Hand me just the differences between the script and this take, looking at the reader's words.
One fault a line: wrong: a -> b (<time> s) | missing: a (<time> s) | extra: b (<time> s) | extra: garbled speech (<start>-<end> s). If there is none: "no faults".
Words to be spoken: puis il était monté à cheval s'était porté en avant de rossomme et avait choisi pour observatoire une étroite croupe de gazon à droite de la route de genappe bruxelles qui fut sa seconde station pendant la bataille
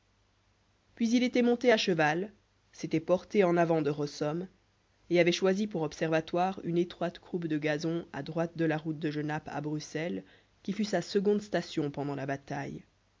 extra: à (9.5 s)